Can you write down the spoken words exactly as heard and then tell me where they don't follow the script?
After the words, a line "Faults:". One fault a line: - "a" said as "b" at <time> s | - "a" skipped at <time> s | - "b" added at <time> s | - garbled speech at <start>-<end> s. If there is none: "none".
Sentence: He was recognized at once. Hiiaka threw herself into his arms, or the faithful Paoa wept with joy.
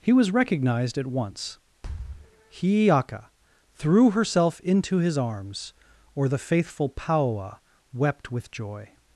He was recognized at once. Hiiaka threw herself into his arms, or the faithful Paoa wept with joy.
Faults:
none